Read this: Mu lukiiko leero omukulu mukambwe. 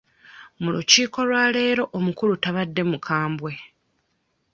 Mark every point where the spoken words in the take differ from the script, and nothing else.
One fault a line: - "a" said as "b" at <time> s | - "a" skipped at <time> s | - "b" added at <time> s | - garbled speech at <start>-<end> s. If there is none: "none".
- "lwa" added at 1.3 s
- "tabadde" added at 2.4 s